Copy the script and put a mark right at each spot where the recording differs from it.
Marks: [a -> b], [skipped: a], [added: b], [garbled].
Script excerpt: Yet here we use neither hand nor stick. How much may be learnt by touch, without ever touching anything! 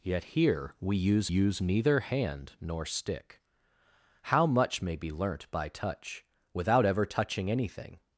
Yet here we use [added: use] neither hand nor stick. How much may be learnt by touch, without ever touching anything!